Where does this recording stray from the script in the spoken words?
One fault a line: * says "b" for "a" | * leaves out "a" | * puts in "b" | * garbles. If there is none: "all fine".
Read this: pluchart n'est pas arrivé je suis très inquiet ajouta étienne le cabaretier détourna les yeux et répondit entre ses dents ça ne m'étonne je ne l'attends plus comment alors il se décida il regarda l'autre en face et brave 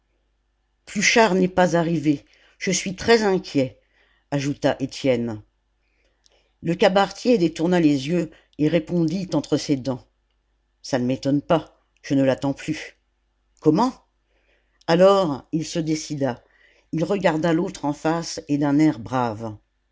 * puts in "pas"
* puts in "d'un air"